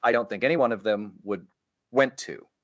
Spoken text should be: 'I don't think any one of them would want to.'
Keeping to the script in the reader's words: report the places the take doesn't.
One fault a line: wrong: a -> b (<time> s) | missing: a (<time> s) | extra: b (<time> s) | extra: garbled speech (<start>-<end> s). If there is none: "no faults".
wrong: want -> went (1.9 s)